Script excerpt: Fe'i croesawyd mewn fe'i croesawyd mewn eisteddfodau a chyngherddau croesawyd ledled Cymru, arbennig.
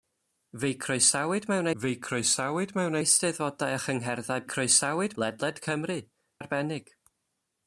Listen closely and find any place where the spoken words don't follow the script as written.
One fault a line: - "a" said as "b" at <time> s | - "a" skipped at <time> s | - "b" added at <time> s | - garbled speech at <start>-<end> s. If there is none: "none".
none